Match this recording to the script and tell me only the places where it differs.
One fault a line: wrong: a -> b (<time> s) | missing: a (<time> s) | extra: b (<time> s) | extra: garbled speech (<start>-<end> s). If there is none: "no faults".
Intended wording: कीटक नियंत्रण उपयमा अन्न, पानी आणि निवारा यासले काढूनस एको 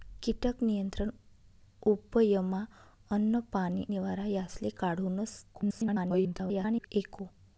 missing: आणि (3.9 s)
extra: garbled speech (5.5-6.9 s)